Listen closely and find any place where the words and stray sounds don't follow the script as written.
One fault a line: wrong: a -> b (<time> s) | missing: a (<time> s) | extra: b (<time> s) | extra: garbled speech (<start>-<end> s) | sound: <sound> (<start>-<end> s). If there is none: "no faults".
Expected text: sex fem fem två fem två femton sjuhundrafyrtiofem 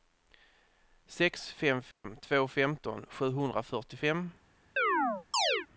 sound: dropout (1.9-2.0 s)
missing: fem två (2.5 s)
sound: chirp (4.8-5.7 s)